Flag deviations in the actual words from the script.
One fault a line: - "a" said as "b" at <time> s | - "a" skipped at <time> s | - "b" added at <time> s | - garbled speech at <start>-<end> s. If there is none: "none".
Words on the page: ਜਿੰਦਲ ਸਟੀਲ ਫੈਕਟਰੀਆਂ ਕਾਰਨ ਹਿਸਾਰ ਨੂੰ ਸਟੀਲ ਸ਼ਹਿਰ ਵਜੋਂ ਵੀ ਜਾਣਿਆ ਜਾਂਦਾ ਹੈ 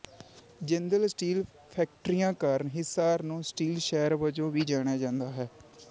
none